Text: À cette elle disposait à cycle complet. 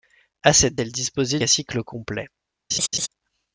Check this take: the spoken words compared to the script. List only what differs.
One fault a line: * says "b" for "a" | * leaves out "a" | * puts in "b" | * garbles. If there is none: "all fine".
all fine